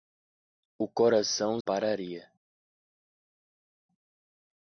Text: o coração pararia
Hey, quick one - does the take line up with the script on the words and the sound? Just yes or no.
yes